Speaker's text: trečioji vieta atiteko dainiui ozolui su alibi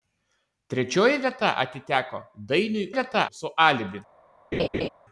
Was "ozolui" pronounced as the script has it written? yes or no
no